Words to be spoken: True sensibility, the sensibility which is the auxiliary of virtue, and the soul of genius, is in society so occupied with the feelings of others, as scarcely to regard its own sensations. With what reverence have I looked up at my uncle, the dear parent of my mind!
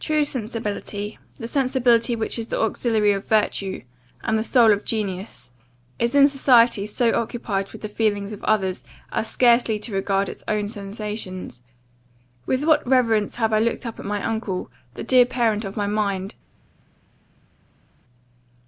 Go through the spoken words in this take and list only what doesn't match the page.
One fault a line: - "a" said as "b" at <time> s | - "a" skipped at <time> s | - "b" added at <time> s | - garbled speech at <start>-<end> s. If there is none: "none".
none